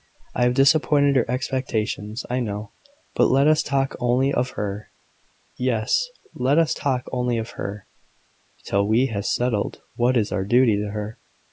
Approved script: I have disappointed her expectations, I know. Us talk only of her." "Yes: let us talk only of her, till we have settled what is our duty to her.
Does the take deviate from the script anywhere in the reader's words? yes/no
yes